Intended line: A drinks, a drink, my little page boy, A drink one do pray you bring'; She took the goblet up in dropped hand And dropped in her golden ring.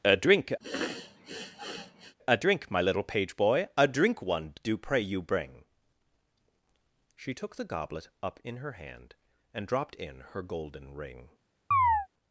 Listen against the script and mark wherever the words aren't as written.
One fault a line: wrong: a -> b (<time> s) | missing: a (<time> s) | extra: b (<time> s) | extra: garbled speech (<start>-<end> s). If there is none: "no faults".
wrong: drinks -> drink (0.2 s)
wrong: dropped -> her (8.6 s)